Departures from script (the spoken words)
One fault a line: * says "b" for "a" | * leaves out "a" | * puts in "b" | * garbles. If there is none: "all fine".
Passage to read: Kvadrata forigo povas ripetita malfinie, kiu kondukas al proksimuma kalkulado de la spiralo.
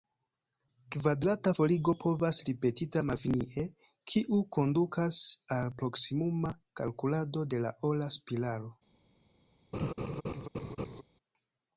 * puts in "ora"